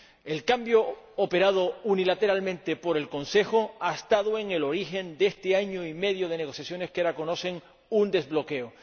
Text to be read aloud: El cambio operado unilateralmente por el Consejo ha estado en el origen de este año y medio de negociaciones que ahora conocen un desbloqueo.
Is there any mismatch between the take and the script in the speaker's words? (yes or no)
no